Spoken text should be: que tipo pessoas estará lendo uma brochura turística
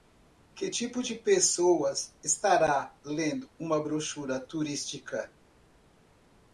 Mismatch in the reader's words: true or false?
true